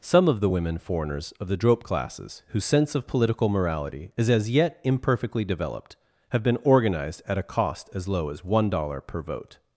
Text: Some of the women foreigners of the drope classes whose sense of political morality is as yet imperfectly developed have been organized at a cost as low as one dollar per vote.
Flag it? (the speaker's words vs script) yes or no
no